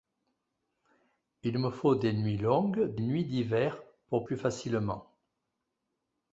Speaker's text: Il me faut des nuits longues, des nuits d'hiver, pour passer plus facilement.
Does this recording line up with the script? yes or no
no